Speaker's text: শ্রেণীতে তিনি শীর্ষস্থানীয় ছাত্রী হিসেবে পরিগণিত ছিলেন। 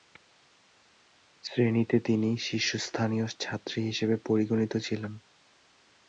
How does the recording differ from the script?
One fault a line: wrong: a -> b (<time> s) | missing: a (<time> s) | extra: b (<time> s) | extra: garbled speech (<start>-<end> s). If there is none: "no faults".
no faults